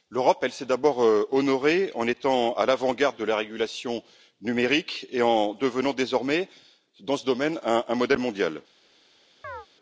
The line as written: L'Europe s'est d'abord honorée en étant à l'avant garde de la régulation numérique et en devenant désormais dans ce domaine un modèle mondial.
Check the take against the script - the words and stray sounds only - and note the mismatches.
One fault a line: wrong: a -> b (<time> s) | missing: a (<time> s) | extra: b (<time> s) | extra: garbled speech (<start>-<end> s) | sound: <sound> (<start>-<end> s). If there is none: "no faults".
sound: chirp (9.4-9.7 s)